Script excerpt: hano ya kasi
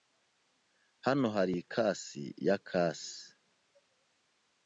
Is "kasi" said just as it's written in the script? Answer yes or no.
yes